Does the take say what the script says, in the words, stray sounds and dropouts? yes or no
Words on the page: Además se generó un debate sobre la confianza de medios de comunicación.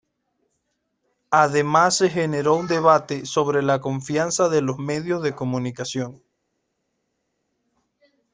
no